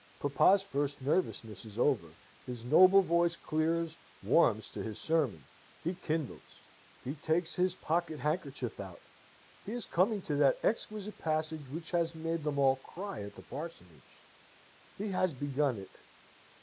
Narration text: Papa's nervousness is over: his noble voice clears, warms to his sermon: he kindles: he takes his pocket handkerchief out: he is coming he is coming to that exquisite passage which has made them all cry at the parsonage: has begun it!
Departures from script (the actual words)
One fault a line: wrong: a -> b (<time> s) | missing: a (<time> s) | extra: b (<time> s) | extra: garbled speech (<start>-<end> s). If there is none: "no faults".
extra: first (0.6 s)
missing: he is coming (10.2 s)
extra: he (15.0 s)